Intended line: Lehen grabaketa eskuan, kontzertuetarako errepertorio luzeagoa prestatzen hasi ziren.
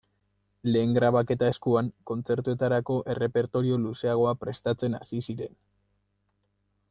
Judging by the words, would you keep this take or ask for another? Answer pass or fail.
pass